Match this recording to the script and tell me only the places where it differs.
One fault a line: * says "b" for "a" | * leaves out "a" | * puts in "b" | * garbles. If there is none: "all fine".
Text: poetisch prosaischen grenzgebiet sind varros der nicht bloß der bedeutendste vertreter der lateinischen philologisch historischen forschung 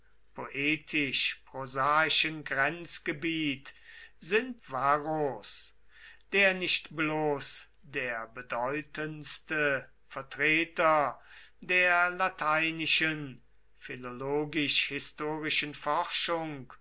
all fine